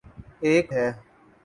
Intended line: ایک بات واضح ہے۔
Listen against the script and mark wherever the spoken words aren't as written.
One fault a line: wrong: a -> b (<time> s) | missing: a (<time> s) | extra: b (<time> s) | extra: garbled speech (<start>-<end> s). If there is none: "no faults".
missing: بات واضح (0.7 s)